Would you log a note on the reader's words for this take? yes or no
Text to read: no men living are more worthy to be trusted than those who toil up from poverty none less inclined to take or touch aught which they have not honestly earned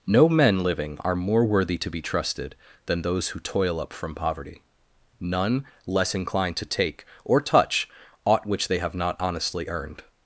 no